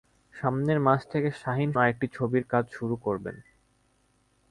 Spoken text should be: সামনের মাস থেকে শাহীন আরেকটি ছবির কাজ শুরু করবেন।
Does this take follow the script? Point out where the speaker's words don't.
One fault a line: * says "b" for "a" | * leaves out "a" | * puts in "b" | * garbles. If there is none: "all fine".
all fine